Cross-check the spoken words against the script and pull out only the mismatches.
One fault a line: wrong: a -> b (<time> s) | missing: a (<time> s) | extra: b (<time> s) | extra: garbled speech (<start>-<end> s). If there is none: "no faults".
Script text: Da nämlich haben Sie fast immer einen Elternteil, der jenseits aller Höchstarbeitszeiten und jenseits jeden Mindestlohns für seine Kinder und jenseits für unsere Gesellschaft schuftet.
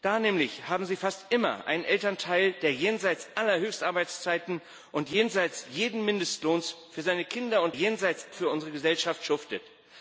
no faults